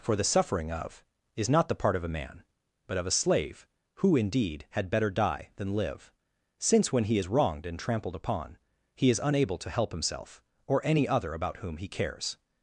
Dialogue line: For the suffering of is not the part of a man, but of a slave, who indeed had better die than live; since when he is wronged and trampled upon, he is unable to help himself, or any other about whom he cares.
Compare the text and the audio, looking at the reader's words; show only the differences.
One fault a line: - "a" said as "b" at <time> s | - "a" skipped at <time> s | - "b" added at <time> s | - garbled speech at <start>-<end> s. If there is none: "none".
none